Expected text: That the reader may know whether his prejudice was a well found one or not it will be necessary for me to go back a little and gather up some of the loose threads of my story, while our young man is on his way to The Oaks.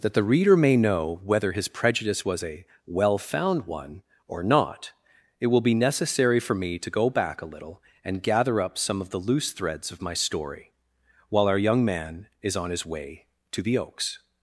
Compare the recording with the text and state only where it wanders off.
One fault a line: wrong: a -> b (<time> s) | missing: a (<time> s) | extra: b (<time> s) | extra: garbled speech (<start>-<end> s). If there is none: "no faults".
no faults